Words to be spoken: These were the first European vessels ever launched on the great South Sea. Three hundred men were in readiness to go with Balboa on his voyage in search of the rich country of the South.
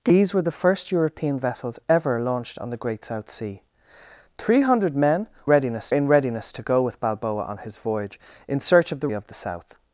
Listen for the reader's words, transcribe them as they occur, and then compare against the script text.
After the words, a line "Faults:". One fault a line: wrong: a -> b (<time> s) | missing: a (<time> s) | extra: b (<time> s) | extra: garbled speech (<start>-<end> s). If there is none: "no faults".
These were the first European vessels ever launched on the great South Sea. Three hundred men readiness in readiness to go with Balboa on his voyage in search of the of the South.
Faults:
wrong: were -> readiness (5.5 s)
missing: rich country (9.1 s)